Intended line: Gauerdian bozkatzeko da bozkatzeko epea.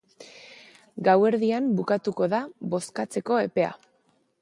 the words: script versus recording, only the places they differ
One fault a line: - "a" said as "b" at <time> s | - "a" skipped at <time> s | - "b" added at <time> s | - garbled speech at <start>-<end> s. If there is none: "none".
- "bozkatzeko" said as "bukatuko" at 1.8 s